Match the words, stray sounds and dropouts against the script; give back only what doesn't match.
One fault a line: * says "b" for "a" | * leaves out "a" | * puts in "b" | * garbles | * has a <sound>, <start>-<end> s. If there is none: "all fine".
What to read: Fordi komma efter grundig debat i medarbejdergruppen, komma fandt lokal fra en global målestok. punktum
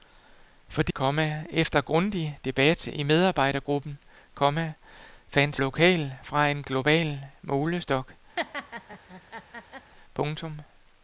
* has a laugh, 8.4-9.9 s